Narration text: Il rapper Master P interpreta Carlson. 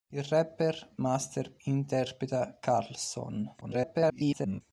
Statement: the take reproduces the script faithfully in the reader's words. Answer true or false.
false